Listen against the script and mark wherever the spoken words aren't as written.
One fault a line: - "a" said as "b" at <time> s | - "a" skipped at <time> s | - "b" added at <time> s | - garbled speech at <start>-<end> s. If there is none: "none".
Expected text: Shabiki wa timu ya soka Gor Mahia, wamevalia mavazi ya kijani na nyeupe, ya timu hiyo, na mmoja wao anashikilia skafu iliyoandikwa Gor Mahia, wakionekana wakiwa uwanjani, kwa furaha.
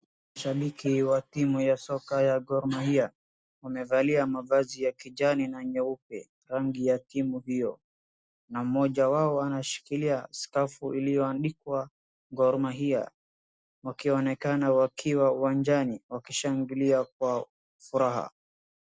- "ya" added at 2.2 s
- "rangi" added at 6.4 s
- "wakishangilia" added at 16.1 s